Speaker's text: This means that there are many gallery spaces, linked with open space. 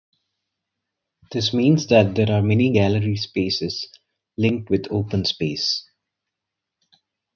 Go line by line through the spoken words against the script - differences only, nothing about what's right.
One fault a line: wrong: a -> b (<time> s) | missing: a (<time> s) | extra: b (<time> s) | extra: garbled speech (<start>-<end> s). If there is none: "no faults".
no faults